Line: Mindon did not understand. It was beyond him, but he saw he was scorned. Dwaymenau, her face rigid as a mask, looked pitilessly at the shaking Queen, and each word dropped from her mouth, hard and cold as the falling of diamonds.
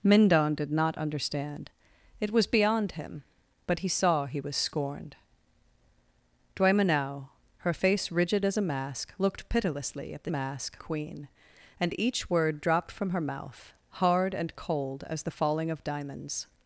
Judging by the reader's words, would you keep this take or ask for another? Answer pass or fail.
fail